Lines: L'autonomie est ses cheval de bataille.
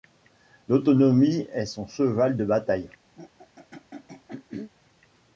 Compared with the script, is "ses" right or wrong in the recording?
wrong